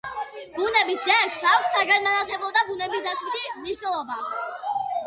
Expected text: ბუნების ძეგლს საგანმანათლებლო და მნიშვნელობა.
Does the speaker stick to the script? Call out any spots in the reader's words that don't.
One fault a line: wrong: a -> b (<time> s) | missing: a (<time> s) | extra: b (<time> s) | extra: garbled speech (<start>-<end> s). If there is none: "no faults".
extra: აქვს (1.5 s)
extra: ბუნებისდაცვითი (2.7 s)